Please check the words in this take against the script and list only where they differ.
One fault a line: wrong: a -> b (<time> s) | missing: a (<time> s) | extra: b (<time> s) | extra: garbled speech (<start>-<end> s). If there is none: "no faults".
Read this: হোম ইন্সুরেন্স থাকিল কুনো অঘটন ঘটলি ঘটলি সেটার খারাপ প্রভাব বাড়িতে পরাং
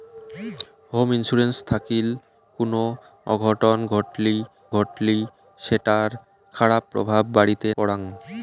no faults